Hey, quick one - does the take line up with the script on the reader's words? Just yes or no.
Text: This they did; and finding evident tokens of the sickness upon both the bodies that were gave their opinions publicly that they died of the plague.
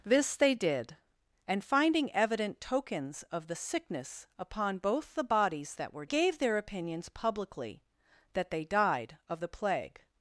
yes